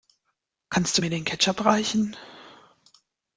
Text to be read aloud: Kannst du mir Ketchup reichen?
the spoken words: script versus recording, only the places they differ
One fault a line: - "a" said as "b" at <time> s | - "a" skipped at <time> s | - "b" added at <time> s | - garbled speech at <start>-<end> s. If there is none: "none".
- "den" added at 1.1 s